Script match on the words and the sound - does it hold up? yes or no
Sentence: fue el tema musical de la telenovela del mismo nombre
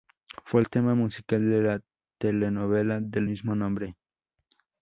yes